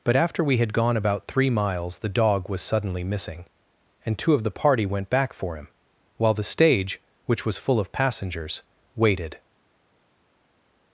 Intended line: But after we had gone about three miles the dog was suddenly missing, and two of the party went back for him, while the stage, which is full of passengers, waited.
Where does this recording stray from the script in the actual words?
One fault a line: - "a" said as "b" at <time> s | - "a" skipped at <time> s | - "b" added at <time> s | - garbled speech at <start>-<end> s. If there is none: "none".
- "is" said as "was" at 7.5 s